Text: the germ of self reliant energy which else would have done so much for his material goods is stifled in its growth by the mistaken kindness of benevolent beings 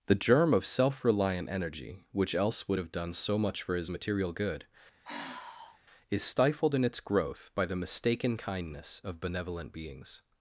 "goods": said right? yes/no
no